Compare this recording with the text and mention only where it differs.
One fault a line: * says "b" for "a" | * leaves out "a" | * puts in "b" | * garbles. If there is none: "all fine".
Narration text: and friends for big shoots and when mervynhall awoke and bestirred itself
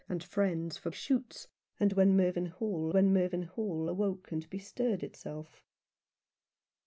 * leaves out "big"
* puts in "when mervynhall"